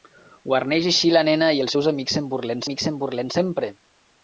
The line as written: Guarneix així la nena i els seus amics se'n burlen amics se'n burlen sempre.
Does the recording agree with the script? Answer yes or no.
yes